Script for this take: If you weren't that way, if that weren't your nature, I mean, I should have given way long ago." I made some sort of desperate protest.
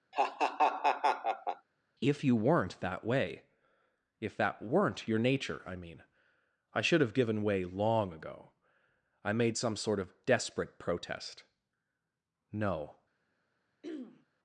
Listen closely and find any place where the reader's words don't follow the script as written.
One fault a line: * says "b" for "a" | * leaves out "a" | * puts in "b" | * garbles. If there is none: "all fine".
* puts in "No"